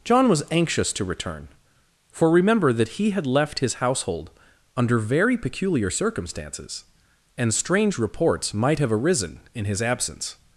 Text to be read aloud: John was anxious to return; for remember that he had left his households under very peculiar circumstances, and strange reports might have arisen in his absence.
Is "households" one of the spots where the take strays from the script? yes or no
yes